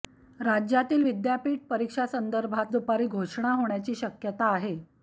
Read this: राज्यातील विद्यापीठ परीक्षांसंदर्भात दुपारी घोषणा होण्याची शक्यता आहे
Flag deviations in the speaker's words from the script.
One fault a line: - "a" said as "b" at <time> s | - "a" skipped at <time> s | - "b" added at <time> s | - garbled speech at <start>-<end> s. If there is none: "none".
none